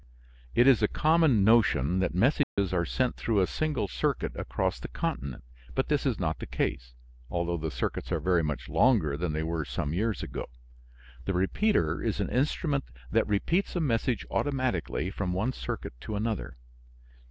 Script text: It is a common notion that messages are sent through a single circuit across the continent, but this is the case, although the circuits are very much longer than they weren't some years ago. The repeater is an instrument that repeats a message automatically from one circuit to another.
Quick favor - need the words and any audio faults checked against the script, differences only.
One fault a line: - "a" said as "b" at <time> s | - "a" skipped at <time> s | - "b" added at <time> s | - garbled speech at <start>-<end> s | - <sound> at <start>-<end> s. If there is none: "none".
- dropout at 2.4-2.6 s
- "not" added at 6.2 s
- "weren't" said as "were" at 9.4 s